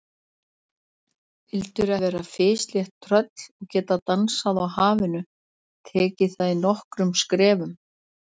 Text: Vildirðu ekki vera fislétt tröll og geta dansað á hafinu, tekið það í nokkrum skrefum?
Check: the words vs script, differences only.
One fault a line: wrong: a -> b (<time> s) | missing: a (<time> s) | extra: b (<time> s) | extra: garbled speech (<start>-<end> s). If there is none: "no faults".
missing: ekki (1.9 s)